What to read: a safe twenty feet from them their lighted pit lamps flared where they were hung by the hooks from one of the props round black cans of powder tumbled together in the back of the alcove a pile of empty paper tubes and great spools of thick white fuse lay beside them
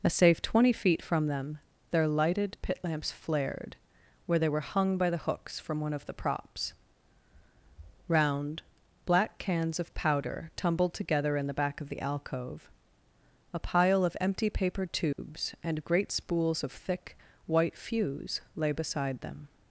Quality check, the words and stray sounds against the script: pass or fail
fail